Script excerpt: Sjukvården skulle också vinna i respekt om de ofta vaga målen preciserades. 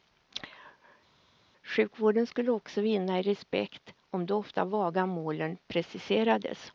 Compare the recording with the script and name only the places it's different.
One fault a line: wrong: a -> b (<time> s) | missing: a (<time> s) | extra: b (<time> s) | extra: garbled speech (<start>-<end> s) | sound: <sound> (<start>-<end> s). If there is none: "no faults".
no faults